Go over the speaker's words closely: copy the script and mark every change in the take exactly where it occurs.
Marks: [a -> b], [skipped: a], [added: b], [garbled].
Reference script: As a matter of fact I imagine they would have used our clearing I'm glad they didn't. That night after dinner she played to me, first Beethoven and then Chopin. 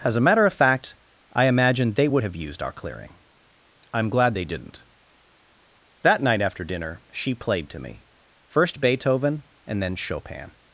As a matter of fact I imagine they would have used our clearing I'm glad they didn't. That night after dinner she played to me, first Beethoven and then Chopin.